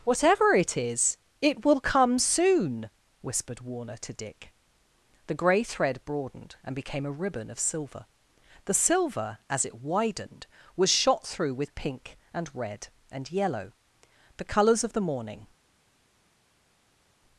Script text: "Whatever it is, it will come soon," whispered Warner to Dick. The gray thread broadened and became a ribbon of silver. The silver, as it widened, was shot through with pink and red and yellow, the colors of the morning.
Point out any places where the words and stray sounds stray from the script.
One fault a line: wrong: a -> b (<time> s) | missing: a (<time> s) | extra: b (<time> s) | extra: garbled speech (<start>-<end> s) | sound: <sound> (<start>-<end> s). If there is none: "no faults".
no faults